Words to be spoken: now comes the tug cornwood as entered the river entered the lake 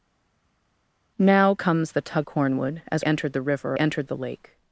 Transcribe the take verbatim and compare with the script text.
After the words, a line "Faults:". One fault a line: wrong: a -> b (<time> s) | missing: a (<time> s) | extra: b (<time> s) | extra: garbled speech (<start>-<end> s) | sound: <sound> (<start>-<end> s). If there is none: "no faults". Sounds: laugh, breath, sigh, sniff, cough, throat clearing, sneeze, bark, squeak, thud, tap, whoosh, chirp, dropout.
now comes the tug cornwood as entered the river entered the lake
Faults:
no faults